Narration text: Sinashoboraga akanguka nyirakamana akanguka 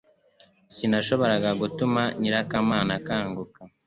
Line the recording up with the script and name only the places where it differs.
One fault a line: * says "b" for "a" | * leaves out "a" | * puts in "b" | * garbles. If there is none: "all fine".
* says "gutuma" for "akanguka"